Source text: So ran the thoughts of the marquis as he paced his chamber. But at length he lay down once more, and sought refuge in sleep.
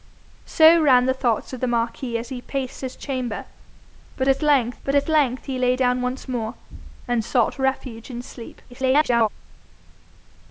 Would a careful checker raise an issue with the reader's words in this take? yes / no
yes